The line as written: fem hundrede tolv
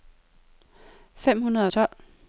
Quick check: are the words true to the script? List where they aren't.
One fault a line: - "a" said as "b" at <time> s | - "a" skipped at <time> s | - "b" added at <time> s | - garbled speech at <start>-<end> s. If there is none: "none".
none